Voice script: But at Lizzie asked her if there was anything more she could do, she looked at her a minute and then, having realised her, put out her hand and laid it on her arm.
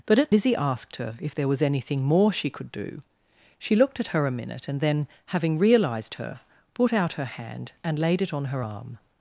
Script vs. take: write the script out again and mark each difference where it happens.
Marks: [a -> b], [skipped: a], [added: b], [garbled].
But at Lizzie asked her if there was anything more she could do, she looked at her a minute and then, having realised her, put out her hand and laid it on her arm.